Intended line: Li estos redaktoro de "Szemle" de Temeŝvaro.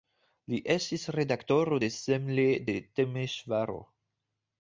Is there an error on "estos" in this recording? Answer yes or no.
yes